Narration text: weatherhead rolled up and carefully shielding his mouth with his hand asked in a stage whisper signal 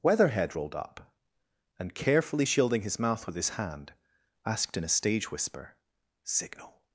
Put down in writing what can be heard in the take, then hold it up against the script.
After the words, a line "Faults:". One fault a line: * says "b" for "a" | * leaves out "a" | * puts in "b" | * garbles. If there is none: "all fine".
weatherhead rolled up and carefully shielding his mouth with his hand asked in a stage whisper signal
Faults:
all fine